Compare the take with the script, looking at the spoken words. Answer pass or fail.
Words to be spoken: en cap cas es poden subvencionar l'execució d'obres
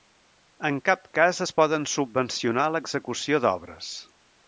pass